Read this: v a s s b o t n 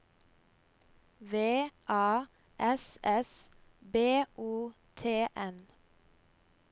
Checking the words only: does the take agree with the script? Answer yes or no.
yes